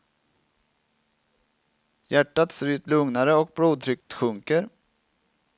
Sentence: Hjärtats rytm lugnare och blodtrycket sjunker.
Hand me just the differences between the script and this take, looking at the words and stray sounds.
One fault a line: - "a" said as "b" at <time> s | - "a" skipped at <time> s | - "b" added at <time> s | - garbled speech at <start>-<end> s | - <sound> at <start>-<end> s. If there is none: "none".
- dropout at 4.0-4.1 s